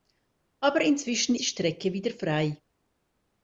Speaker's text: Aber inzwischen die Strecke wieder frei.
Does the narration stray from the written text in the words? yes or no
no